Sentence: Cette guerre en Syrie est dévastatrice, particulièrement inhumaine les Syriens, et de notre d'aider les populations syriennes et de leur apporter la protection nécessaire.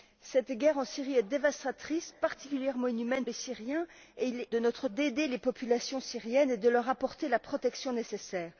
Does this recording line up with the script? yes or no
yes